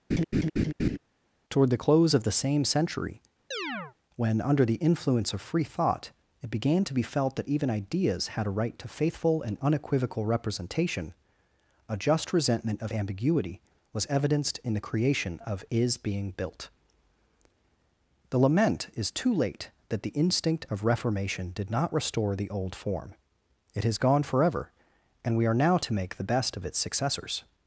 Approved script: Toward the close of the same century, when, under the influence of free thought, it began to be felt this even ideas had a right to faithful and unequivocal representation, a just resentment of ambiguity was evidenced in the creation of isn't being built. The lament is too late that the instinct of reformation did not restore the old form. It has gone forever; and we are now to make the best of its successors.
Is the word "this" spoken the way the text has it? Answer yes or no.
no